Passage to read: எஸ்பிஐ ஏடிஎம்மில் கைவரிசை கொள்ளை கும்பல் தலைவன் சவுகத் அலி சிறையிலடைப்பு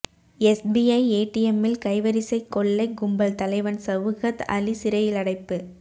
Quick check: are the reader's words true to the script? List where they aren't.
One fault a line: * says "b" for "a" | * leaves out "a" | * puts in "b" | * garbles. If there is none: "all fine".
all fine